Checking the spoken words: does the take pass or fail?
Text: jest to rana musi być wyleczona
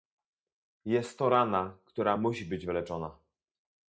fail